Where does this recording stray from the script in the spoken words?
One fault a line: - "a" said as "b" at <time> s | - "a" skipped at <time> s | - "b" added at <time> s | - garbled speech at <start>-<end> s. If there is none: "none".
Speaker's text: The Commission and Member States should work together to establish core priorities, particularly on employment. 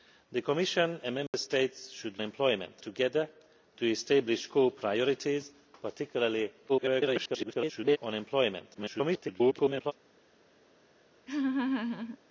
- "work" said as "employment" at 2.2 s
- garbled speech at 6.7-8.0 s
- garbled speech at 8.7-9.9 s